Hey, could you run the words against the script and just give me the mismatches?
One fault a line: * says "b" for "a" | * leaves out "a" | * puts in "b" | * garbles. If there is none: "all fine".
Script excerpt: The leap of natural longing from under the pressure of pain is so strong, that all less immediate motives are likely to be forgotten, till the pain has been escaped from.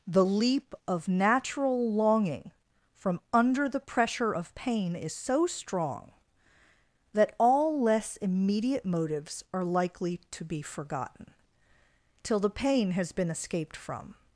all fine